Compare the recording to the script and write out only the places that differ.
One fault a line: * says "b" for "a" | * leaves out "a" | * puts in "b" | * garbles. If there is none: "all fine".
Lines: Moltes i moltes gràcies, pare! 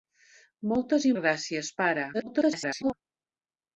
* leaves out "moltes"
* garbles